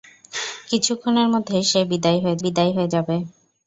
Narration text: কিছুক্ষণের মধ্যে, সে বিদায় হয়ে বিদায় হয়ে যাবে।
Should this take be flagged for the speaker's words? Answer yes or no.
no